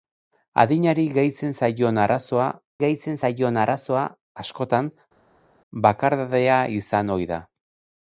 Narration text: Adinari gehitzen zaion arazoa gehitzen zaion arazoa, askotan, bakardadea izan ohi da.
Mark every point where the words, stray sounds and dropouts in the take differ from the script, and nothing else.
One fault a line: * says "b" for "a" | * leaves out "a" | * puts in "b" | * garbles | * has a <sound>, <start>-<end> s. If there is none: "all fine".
all fine